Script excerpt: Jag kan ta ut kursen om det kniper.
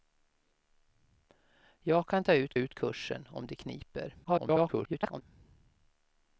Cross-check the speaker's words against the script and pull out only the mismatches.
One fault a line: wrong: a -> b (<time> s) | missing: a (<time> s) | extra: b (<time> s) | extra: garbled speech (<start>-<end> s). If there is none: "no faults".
extra: ut (2.5 s)
extra: garbled speech (4.2-5.2 s)